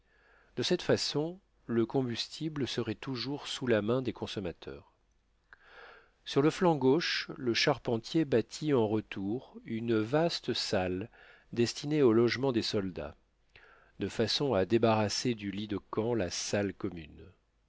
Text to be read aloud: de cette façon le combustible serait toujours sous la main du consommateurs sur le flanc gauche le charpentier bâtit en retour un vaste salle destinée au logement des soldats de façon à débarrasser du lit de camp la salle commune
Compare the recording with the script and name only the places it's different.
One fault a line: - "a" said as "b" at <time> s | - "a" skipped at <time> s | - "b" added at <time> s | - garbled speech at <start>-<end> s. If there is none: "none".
- "du" said as "des" at 4.0 s
- "un" said as "une" at 9.6 s